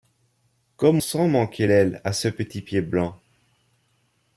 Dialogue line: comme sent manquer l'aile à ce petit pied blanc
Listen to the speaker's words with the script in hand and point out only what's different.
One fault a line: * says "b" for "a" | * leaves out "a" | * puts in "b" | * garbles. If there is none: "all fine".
all fine